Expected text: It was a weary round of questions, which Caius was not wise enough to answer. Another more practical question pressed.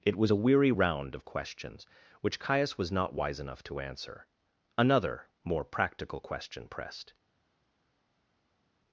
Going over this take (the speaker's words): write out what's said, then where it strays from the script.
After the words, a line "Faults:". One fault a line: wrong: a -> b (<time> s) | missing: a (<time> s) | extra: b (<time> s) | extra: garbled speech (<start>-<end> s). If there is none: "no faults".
It was a weary round of questions, which Caius was not wise enough to answer. Another more practical question pressed.
Faults:
no faults